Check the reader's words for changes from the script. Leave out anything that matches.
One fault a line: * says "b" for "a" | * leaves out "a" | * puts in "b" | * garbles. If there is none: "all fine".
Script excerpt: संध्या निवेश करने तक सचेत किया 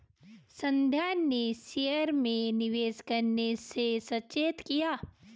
* puts in "ने शेयर में"
* says "से" for "तक"